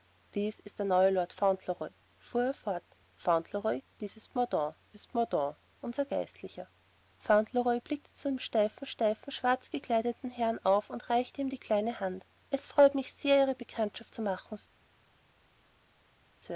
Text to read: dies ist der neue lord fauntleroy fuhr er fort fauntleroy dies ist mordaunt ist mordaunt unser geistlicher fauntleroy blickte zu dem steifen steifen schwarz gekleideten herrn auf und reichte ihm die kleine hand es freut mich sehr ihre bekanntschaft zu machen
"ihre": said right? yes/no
yes